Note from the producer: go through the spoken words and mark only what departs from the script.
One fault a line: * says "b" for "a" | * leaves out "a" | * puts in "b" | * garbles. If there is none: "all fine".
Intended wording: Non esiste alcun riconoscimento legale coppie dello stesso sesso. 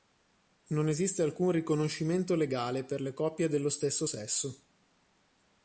* puts in "per le"